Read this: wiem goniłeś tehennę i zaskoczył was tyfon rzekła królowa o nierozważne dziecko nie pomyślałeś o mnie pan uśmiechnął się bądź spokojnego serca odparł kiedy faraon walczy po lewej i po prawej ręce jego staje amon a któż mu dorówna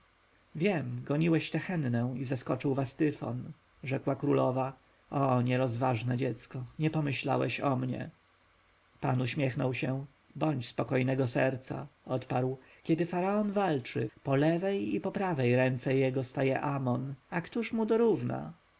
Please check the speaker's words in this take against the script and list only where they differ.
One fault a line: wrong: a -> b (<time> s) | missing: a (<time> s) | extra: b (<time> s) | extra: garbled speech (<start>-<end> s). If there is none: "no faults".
no faults